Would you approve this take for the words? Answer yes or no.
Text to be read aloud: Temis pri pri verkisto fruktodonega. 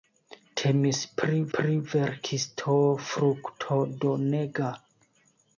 yes